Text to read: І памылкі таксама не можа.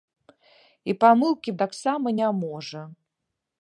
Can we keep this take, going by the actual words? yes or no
yes